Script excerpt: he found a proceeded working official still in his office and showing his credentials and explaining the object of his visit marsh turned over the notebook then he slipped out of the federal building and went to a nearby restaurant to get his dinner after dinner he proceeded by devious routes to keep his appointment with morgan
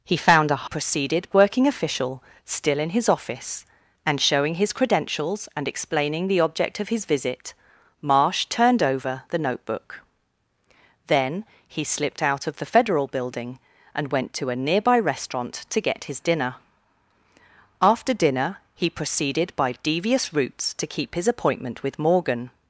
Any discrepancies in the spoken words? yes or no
no